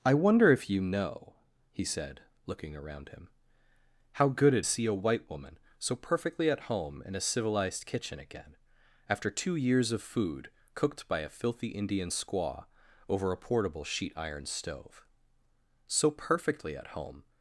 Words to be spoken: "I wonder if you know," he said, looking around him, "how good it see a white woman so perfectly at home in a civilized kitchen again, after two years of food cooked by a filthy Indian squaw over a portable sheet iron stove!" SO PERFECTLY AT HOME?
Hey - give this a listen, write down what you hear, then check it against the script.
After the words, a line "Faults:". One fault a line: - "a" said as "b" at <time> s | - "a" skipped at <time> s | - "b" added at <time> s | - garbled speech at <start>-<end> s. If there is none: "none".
"I wonder if you know," he said, looking around him, "how good it see a white woman so perfectly at home in a civilized kitchen again, after two years of food cooked by a filthy Indian squaw over a portable sheet iron stove!" SO PERFECTLY AT HOME?
Faults:
none